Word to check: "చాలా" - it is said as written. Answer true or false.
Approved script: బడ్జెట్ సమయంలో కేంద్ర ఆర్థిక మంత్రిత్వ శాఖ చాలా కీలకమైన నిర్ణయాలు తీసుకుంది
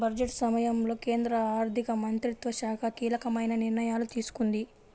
false